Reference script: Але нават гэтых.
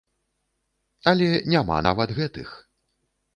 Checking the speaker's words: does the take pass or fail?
fail